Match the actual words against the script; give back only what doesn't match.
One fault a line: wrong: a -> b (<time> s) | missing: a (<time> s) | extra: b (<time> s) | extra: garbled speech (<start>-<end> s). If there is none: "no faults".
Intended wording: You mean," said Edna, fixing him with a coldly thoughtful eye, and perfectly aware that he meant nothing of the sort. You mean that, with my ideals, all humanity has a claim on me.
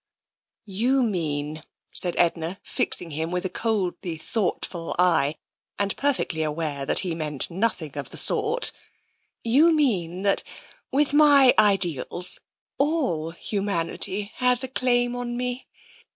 no faults